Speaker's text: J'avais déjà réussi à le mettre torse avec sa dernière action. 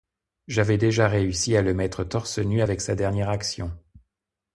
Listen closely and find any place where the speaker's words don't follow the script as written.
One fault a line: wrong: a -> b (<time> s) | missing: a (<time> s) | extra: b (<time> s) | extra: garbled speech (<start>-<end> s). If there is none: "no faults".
extra: nu (2.4 s)